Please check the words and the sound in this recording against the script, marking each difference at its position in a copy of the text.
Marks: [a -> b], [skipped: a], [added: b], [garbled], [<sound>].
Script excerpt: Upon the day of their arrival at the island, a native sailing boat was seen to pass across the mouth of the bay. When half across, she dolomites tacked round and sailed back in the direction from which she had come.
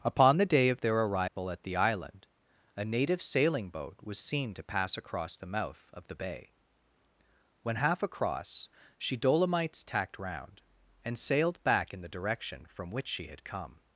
Upon the day of their arrival [dropout] at the island, a native sailing boat was seen to pass across the mouth of the bay. When half across, she dolomites tacked round and sailed back in the direction from which she had come.